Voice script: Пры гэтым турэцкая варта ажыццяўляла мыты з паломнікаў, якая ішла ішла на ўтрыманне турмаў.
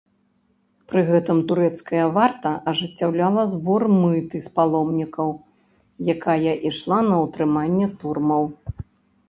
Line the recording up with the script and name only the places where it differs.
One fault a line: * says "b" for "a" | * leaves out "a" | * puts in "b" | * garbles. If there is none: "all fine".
* puts in "збор"
* leaves out "ішла"